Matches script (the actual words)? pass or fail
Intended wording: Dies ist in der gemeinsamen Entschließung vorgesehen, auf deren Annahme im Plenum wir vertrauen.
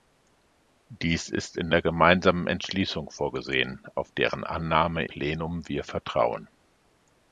fail